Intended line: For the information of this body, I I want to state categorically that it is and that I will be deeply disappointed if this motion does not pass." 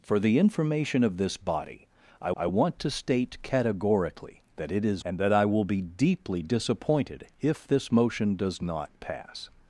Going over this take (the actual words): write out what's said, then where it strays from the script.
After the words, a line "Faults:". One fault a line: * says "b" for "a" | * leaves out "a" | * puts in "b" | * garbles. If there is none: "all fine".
For the information of this body, I I want to state categorically that it is and that I will be deeply disappointed if this motion does not pass."
Faults:
all fine